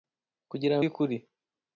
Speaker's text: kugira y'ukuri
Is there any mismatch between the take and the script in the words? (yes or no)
no